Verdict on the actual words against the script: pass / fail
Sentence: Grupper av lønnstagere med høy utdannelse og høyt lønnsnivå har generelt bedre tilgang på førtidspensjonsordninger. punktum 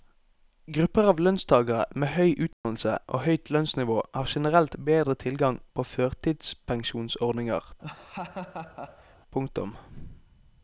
pass